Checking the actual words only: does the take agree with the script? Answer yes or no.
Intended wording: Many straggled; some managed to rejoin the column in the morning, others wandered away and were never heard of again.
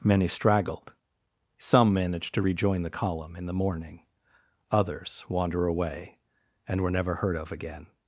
no